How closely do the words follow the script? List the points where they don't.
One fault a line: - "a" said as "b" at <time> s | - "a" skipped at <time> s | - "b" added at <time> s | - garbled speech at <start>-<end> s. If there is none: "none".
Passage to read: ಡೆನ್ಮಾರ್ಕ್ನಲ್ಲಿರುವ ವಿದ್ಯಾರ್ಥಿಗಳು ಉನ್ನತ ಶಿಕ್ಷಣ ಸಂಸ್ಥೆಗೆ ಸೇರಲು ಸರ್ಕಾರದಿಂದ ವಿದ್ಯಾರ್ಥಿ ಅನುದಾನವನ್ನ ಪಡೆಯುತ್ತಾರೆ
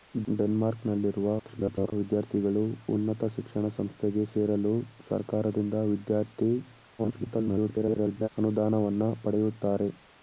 - garbled speech at 1.4-1.9 s
- garbled speech at 7.0-8.3 s